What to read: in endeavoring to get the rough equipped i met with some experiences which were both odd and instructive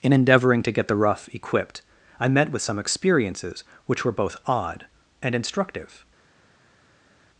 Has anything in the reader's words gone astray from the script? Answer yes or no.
no